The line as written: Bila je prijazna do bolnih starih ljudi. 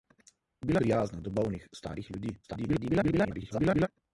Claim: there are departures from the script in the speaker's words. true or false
true